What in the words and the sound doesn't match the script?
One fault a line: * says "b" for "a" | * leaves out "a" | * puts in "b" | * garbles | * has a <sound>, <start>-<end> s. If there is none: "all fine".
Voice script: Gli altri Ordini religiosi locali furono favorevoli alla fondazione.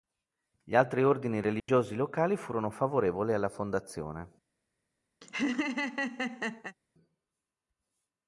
* has a dropout, 1.6-1.7 s
* has a laugh, 5.2-6.8 s